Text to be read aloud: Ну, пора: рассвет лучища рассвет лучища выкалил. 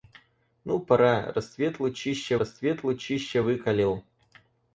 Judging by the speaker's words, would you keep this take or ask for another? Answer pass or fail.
pass